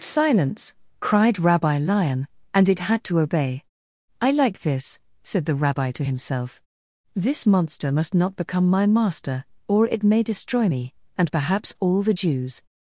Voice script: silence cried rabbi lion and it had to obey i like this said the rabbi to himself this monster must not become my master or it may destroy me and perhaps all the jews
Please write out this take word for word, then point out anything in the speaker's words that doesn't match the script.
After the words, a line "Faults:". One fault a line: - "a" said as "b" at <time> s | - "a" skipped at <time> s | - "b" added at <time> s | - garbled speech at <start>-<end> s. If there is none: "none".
silence cried rabbi lion and it had to obey i like this said the rabbi to himself this monster must not become my master or it may destroy me and perhaps all the jews
Faults:
none